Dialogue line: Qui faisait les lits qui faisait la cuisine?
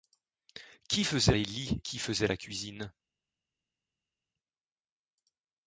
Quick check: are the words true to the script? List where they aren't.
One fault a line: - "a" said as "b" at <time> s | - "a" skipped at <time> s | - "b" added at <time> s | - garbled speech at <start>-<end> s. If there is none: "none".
none